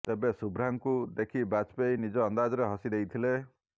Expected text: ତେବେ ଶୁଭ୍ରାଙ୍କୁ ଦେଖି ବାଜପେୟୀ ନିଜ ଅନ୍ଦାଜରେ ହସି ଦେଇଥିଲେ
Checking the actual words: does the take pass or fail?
pass